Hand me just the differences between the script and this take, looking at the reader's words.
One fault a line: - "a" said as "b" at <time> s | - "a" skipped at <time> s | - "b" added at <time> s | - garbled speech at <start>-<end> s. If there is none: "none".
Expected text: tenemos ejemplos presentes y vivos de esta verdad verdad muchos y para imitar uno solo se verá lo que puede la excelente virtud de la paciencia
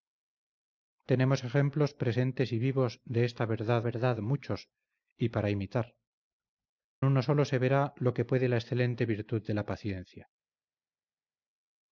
none